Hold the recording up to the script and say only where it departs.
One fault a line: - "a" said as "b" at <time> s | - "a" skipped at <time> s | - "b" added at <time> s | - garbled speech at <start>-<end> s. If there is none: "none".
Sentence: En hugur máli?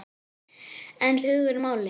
none